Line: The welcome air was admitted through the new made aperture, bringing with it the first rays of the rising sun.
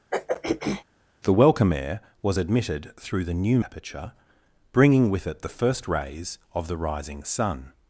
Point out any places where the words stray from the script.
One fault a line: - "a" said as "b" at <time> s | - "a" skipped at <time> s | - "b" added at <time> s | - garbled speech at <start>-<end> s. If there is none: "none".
- "made" skipped at 3.6 s